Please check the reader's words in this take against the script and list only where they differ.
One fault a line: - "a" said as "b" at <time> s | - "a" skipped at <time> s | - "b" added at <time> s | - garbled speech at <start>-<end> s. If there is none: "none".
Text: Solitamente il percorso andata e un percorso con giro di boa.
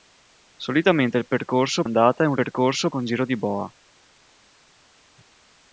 none